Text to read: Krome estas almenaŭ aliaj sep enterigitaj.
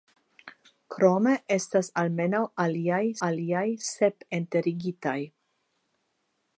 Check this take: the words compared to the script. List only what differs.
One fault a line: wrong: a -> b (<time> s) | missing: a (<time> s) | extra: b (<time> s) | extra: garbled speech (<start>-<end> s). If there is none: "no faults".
extra: aliaj (3.3 s)